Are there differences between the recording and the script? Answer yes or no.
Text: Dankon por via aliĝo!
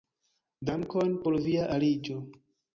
no